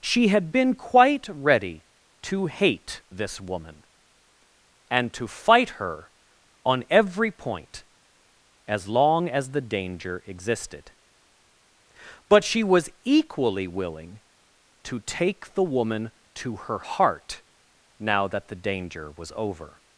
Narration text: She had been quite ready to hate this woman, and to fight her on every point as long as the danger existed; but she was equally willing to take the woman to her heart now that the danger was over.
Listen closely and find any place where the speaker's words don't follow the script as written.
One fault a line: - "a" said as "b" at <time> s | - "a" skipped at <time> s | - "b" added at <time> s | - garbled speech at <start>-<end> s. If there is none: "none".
none